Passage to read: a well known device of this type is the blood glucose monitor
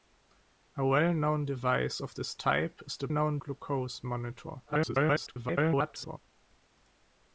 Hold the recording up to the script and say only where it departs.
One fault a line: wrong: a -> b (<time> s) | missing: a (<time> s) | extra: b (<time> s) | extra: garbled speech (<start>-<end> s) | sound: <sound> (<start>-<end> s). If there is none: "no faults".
wrong: blood -> known (3.1 s)
extra: garbled speech (4.7-6.2 s)